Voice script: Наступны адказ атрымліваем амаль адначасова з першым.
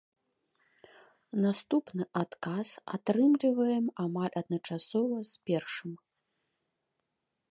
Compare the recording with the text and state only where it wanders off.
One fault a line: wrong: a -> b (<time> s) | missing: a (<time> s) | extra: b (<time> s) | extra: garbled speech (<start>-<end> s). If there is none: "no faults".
no faults